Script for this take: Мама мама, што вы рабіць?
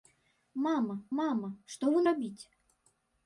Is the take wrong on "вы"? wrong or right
right